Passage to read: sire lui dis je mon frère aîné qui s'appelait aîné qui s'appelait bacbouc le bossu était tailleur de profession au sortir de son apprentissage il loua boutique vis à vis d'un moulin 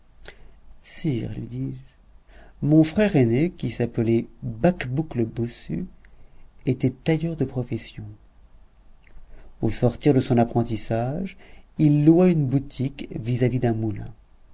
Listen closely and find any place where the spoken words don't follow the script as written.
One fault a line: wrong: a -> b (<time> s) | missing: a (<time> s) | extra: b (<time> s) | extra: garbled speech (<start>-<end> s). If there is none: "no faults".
missing: aîné qui s'appelait (4.3 s)
extra: une (12.3 s)